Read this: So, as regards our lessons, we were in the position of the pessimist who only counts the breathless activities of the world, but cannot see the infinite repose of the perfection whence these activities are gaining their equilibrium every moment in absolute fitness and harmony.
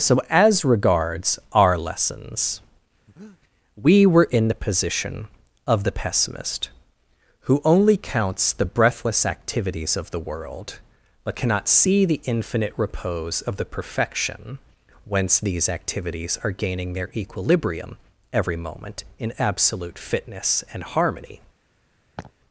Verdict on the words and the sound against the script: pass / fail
fail